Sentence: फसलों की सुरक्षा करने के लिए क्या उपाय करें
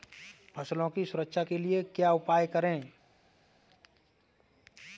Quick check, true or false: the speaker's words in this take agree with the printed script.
false